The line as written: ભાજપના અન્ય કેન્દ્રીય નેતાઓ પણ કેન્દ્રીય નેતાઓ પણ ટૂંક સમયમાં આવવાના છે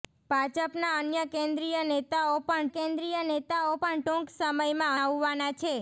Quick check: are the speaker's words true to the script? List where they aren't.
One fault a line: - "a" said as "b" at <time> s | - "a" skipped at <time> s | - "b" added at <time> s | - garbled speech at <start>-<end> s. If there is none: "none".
none